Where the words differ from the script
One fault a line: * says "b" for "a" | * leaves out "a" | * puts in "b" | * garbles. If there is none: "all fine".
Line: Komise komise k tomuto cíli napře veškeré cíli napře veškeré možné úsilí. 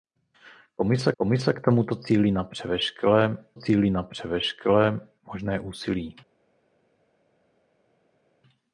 all fine